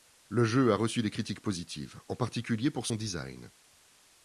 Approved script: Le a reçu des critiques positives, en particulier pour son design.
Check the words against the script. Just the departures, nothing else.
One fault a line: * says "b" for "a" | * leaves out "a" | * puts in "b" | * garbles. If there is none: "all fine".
* puts in "jeu"